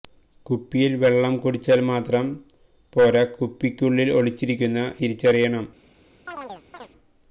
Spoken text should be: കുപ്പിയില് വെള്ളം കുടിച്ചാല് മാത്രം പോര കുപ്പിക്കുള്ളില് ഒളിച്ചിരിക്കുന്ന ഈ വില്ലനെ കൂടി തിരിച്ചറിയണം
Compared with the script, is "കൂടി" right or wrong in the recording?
wrong